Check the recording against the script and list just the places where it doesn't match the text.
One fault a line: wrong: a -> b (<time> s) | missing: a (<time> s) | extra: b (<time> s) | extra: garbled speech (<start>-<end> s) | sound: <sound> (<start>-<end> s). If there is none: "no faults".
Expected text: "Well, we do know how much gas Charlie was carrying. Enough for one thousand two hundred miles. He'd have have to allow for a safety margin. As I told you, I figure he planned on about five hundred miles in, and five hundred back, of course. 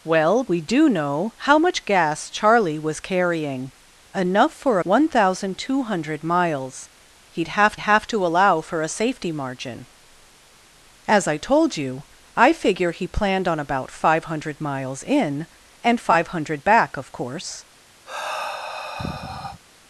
sound: sigh (18.1-19.6 s)